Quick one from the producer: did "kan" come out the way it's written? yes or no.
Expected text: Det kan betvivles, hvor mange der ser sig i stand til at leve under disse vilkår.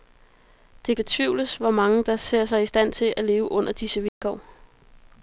no